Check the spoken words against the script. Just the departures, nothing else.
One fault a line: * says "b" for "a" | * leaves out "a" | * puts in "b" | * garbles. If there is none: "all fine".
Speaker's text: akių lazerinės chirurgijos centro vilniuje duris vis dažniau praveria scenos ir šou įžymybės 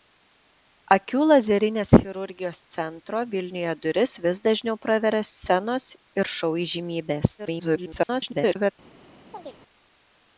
* garbles